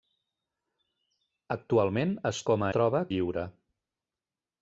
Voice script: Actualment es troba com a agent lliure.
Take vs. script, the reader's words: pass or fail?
fail